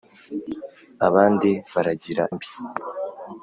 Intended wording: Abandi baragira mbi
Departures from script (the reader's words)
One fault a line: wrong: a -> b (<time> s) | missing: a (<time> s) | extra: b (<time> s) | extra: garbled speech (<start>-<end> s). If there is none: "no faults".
no faults